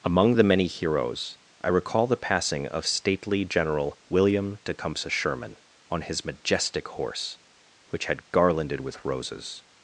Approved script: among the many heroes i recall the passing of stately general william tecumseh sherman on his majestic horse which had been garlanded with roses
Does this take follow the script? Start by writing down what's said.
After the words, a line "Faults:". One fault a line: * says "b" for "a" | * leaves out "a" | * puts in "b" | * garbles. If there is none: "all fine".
among the many heroes i recall the passing of stately general william tecumseh sherman on his majestic horse which had garlanded with roses
Faults:
* leaves out "been"